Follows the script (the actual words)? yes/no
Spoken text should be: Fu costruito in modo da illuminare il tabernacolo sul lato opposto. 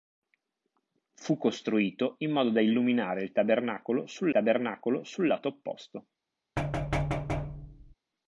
no